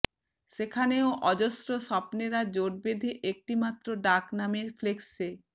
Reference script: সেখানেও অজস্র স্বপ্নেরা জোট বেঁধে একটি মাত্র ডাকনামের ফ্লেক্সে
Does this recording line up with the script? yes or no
yes